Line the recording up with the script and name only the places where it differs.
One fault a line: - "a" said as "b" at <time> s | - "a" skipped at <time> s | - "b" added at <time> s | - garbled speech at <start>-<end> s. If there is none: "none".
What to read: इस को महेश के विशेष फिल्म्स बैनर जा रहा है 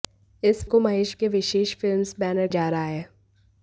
none